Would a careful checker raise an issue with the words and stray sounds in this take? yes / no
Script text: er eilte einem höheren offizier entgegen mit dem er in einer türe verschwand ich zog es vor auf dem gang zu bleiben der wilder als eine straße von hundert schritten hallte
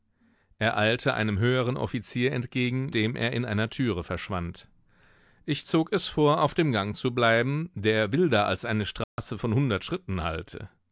yes